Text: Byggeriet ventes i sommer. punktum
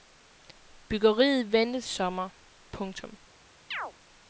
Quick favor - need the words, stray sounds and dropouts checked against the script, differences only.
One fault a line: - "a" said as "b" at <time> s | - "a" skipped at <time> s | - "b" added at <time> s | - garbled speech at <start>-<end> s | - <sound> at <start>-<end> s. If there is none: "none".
- chirp at 3.7-3.9 s